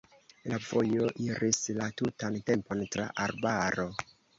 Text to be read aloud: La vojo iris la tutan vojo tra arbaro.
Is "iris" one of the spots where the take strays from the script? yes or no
no